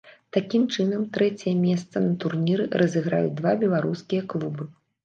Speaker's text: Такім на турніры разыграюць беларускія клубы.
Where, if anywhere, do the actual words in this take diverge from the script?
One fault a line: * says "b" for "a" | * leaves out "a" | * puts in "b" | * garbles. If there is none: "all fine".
* puts in "чынам трэцяе месца"
* puts in "два"